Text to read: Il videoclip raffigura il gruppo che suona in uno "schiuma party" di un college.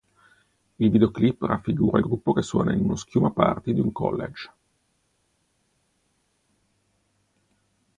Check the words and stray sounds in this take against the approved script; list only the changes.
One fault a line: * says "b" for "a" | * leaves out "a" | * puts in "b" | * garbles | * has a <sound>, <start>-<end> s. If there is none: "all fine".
all fine